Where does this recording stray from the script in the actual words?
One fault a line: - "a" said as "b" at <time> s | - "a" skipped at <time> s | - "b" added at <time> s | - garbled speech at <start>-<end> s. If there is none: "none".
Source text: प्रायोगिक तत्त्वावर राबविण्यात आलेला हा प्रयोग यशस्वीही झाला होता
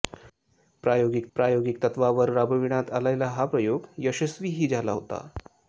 - "प्रायोगिक" added at 1.4 s